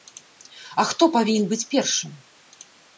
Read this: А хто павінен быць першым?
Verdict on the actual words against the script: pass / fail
pass